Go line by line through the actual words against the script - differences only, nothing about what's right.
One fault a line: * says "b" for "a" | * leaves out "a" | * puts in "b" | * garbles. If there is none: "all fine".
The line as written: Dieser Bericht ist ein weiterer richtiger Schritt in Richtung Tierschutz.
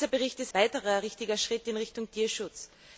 * leaves out "ein"